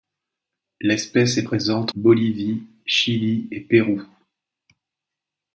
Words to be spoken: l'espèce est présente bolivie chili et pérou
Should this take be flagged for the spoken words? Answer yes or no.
no